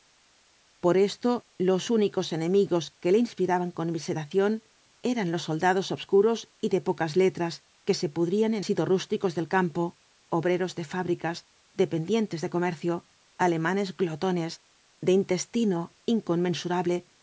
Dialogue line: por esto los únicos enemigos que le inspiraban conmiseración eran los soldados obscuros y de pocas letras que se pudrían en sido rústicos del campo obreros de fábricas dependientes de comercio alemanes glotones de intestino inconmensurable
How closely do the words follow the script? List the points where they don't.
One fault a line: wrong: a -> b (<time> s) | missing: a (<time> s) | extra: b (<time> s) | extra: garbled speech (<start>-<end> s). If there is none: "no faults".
no faults